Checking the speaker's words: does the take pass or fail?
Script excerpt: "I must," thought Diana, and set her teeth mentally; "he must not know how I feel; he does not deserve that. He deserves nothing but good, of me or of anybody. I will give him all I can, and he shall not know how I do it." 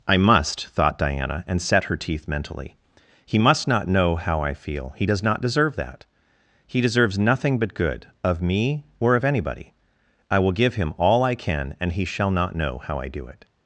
pass